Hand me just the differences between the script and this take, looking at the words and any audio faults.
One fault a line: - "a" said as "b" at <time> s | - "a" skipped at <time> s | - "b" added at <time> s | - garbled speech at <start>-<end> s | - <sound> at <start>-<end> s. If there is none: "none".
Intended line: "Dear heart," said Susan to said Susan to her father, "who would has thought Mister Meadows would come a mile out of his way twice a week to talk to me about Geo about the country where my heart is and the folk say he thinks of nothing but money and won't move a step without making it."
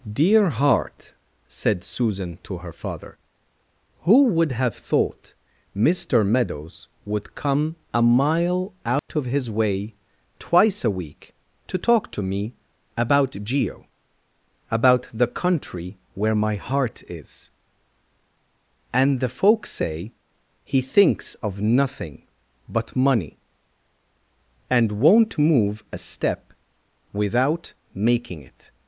- "said Susan to" skipped at 2.6 s
- "has" said as "have" at 4.5 s
- dropout at 9.0-9.1 s